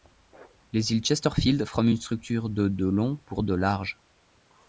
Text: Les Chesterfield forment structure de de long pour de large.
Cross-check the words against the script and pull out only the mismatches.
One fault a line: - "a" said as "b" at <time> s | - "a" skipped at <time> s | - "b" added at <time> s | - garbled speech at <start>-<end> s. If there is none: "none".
- "îles" added at 0.9 s
- "une" added at 1.9 s